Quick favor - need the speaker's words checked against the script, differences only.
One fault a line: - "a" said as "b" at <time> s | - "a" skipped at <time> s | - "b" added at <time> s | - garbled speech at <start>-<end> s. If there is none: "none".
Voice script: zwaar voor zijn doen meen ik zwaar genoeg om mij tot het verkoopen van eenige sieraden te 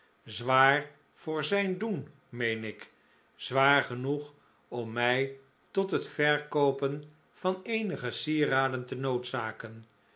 none